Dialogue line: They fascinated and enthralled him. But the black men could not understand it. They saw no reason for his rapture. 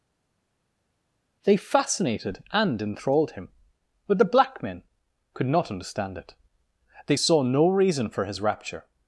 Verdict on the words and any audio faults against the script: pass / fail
pass